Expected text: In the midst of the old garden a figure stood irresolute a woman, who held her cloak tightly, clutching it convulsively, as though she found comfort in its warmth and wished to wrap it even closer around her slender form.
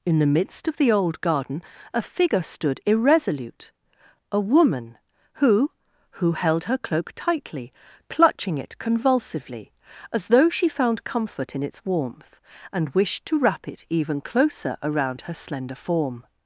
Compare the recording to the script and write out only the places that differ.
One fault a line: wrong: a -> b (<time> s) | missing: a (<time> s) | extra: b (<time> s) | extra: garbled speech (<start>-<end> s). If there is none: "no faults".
extra: who (6.2 s)